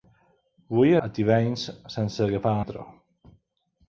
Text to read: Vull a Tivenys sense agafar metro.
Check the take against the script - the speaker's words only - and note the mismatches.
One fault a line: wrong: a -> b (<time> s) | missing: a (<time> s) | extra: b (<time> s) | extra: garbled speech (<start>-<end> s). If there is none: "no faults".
no faults